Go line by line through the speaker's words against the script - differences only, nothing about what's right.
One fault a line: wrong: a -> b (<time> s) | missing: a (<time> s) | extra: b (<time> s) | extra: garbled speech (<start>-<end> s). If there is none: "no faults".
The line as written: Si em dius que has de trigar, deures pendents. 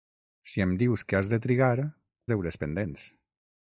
no faults